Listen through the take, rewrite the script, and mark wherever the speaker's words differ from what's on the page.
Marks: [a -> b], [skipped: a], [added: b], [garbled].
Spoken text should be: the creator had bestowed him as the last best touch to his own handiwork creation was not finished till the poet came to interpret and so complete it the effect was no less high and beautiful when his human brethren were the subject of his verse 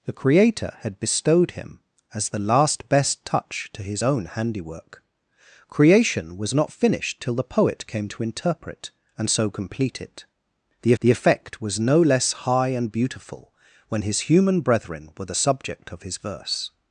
the creator had bestowed him as the last best touch to his own handiwork creation was not finished till the poet came to interpret and so complete it the [added: the] effect was no less high and beautiful when his human brethren were the subject of his verse